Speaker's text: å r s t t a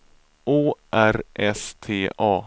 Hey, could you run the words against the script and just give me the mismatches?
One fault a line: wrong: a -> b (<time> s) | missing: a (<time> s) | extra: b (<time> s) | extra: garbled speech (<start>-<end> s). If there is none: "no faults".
missing: t (2.1 s)